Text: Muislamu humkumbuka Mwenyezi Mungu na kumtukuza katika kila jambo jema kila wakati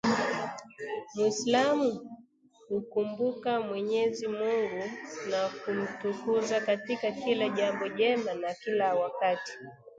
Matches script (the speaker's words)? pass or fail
fail